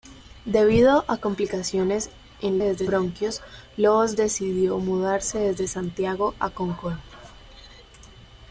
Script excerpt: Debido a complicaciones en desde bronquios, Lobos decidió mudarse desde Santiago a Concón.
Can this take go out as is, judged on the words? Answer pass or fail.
pass